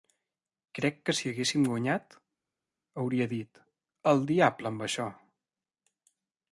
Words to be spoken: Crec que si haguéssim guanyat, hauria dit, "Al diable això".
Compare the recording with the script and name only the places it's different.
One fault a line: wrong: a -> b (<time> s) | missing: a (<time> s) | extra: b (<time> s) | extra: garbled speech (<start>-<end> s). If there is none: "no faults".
extra: amb (4.7 s)